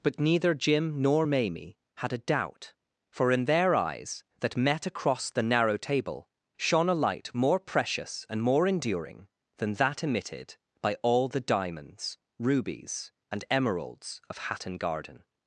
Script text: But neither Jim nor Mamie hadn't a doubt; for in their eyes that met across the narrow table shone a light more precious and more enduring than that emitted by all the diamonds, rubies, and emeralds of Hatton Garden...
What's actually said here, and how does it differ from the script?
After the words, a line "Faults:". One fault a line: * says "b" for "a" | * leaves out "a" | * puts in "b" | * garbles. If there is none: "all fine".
But neither Jim nor Mamie had a doubt; for in their eyes that met across the narrow table shone a light more precious and more enduring than that emitted by all the diamonds, rubies, and emeralds of Hatton Garden...
Faults:
* says "had" for "hadn't"